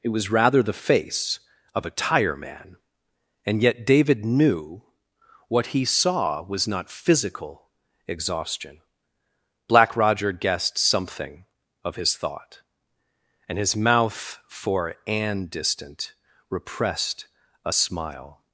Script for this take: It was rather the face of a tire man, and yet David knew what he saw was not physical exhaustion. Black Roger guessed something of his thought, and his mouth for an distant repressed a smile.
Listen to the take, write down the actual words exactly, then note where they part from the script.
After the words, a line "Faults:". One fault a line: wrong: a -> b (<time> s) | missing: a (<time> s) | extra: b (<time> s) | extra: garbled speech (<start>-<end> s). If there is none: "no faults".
It was rather the face of a tire man, and yet David knew what he saw was not physical exhaustion. Black Roger guessed something of his thought, and his mouth for an distant repressed a smile.
Faults:
no faults